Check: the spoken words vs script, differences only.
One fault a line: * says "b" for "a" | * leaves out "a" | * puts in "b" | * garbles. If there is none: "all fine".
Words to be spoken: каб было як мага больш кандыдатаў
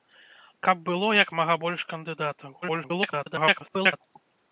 * garbles